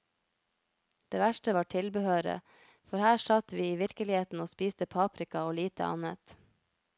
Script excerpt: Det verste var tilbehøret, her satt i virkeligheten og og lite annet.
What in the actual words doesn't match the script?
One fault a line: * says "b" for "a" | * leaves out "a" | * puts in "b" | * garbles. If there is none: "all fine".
* puts in "for"
* puts in "vi"
* puts in "spiste paprika"